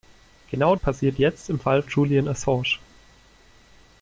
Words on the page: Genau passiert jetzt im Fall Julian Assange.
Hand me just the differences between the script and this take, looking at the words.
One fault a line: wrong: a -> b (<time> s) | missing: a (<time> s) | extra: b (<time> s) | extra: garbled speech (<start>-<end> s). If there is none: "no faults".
no faults